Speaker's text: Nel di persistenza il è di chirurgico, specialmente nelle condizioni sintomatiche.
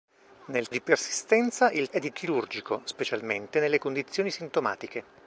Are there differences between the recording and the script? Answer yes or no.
no